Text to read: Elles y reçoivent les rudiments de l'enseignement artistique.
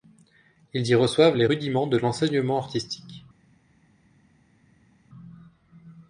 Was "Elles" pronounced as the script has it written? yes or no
no